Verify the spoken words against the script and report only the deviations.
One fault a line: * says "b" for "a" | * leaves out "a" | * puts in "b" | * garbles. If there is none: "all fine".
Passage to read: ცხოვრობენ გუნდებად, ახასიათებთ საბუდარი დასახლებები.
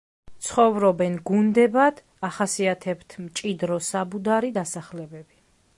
* puts in "მჭიდრო"